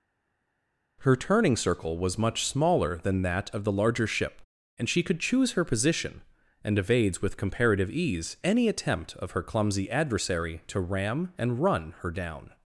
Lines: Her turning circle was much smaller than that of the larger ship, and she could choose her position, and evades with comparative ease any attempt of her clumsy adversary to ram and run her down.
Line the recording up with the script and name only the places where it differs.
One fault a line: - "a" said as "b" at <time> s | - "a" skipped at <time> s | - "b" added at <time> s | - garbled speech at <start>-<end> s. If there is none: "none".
none